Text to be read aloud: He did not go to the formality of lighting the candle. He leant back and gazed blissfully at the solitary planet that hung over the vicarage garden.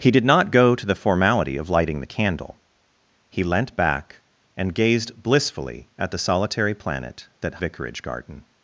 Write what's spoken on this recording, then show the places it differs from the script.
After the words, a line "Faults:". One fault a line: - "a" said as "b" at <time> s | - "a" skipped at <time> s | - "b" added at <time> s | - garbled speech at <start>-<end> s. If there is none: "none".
He did not go to the formality of lighting the candle. He leant back and gazed blissfully at the solitary planet that vicarage garden.
Faults:
- "hung over the" skipped at 7.6 s